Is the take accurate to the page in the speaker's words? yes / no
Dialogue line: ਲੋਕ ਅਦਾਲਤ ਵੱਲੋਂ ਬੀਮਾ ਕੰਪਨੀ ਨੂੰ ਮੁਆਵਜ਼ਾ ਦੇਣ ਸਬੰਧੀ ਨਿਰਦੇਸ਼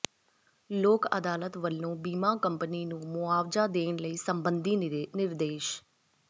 yes